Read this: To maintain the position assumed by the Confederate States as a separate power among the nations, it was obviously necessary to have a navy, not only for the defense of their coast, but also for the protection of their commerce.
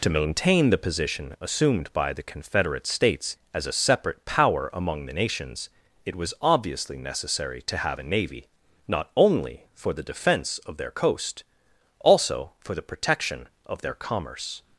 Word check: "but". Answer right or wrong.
wrong